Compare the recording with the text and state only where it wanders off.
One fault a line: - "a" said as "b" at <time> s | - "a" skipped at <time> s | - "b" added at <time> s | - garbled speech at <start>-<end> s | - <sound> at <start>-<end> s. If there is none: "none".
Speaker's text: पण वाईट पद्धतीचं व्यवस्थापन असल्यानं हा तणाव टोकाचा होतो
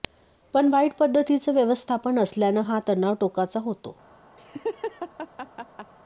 - laugh at 4.4-5.9 s